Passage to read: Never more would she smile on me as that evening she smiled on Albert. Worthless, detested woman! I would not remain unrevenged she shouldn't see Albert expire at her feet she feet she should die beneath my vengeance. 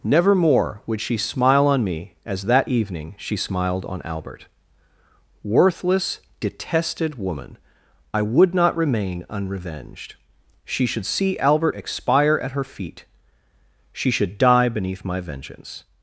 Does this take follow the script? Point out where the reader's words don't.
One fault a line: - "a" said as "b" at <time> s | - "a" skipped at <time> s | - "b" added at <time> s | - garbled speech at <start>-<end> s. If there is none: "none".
- "shouldn't" said as "should" at 10.8 s
- "feet she" skipped at 14.1 s